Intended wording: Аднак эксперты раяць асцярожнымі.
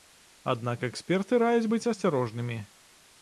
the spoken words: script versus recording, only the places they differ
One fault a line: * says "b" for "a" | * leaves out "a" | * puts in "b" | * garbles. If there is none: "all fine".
* puts in "быць"